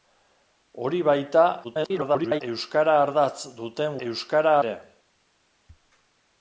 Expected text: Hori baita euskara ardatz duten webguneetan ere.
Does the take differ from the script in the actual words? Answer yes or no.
yes